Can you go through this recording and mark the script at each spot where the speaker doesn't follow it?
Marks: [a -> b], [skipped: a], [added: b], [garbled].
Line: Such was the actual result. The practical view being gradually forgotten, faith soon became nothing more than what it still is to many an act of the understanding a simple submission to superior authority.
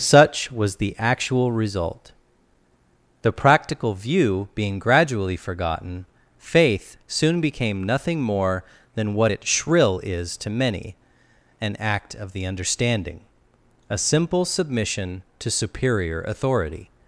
Such was the actual result. The practical view being gradually forgotten, faith soon became nothing more than what it [still -> shrill] is to many an act of the understanding a simple submission to superior authority.